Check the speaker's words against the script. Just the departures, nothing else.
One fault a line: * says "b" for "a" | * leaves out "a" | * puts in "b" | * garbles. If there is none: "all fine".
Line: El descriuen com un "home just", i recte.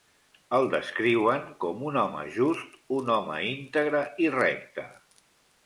* puts in "un home íntegre"